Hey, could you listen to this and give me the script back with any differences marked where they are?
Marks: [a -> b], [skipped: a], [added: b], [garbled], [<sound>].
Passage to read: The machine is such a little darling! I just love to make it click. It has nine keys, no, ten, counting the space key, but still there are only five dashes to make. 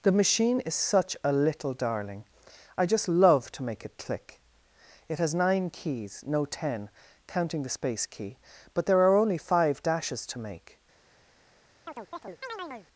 The machine is such a little darling! I just love to make it click. It has nine keys, no, ten, counting the space key, but [skipped: still] there are only five dashes to make. [chirp]